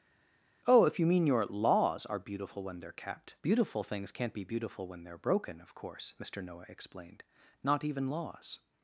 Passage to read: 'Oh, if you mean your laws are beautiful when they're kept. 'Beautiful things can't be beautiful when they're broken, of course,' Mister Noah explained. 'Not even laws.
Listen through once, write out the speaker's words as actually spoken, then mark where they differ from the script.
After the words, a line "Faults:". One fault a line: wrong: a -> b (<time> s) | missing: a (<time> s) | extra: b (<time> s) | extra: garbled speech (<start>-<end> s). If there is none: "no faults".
'Oh, if you mean your laws are beautiful when they're kept. 'Beautiful things can't be beautiful when they're broken, of course,' Mister Noah explained. 'Not even laws.
Faults:
no faults